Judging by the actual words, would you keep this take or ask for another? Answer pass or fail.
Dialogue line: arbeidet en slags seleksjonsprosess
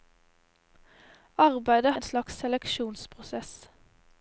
pass